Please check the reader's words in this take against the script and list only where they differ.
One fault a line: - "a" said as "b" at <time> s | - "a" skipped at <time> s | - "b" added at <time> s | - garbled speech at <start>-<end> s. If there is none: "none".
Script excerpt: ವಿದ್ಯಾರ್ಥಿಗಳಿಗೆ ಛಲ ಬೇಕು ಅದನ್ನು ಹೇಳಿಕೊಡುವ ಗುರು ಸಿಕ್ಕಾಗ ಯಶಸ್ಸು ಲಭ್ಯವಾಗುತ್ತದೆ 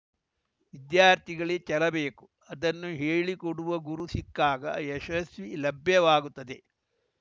none